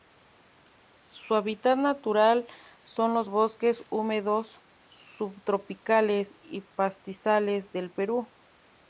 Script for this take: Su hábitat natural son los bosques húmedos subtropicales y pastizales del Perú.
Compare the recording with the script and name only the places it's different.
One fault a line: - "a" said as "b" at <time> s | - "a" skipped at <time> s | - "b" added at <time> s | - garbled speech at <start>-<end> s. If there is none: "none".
none